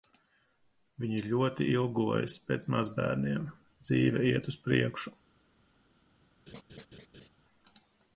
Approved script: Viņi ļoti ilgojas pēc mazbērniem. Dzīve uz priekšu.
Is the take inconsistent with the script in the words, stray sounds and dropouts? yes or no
yes